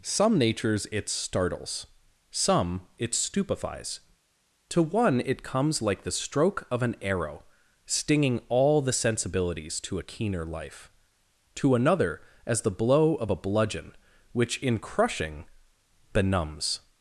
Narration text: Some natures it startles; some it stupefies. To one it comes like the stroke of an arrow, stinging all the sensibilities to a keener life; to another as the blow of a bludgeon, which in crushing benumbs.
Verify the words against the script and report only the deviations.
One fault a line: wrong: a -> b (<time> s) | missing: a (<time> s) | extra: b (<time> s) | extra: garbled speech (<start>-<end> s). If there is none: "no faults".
no faults